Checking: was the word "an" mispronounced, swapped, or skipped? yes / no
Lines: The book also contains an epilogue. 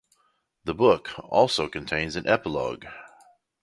no